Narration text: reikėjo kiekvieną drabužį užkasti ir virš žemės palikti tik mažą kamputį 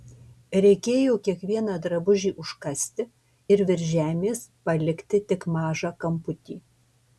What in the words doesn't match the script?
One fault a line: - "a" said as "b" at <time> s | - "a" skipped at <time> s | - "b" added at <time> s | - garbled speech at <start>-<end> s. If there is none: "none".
none